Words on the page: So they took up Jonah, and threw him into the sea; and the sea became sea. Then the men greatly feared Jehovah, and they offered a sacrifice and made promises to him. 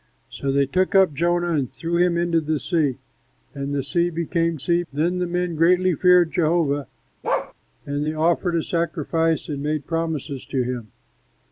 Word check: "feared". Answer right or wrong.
right